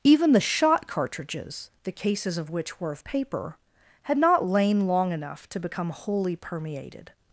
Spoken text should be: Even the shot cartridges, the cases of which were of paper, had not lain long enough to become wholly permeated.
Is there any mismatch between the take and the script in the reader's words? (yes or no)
no